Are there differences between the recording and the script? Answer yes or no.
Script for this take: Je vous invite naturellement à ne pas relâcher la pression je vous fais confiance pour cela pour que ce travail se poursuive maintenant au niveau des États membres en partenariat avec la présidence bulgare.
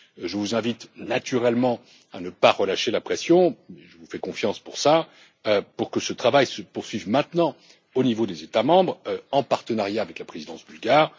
no